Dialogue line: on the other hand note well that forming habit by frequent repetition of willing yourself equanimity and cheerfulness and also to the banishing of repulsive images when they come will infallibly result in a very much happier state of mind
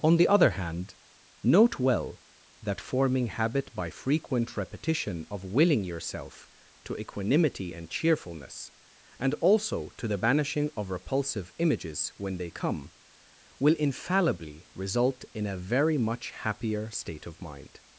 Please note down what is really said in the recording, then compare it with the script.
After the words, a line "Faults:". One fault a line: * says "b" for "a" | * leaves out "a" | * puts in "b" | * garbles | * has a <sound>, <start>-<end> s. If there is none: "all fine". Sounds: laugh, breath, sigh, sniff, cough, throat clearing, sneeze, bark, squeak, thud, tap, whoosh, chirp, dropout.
on the other hand note well that forming habit by frequent repetition of willing yourself to equanimity and cheerfulness and also to the banishing of repulsive images when they come will infallibly result in a very much happier state of mind
Faults:
* puts in "to"